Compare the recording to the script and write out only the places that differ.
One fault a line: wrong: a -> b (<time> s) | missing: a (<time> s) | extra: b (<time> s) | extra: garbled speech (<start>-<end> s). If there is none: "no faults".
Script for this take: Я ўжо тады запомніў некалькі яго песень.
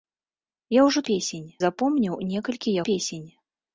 wrong: тады -> песень (1.1 s)
missing: яго (2.8 s)